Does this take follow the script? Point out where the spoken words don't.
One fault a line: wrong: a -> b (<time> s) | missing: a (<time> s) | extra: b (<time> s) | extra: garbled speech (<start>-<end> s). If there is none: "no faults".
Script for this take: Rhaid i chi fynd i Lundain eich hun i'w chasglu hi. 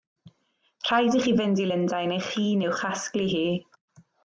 no faults